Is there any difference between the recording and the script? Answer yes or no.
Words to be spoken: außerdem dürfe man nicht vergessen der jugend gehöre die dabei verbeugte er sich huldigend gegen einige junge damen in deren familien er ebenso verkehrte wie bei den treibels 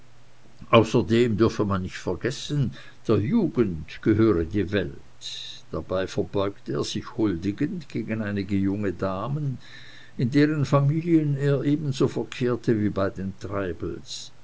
yes